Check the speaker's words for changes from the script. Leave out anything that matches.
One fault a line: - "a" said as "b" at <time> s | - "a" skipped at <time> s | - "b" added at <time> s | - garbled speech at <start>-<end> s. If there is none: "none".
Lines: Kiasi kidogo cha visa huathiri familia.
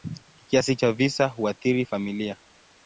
- "kidogo" skipped at 0.8 s